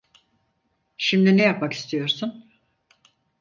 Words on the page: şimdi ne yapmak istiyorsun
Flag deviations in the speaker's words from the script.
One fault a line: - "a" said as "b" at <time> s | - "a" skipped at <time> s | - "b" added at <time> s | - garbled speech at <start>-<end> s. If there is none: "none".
none